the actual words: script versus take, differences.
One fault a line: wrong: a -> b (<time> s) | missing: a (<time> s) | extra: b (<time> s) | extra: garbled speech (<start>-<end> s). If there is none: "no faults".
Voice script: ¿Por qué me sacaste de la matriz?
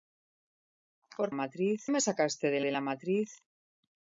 wrong: qué -> matriz (1.3 s)
extra: de (2.6 s)